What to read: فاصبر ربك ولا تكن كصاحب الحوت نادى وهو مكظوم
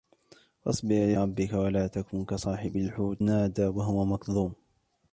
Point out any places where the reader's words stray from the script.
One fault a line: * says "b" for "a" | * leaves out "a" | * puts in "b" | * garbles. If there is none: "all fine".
all fine